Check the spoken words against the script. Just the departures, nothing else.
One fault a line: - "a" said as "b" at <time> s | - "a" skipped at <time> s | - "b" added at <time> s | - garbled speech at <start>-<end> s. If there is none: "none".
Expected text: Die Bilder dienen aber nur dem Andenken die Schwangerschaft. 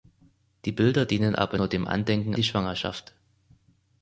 none